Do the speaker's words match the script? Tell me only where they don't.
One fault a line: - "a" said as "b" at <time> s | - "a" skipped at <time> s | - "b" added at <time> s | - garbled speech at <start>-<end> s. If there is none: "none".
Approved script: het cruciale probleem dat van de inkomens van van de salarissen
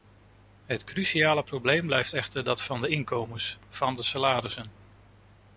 - "blijft echter" added at 1.9 s
- "van" skipped at 3.9 s